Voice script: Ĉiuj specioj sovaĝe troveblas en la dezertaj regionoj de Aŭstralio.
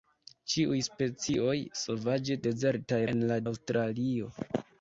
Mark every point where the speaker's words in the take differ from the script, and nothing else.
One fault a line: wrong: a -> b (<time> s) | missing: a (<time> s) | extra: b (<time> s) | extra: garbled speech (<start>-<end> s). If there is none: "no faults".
wrong: troveblas -> dezertaj (2.5 s)
missing: dezertaj regionoj de (3.4 s)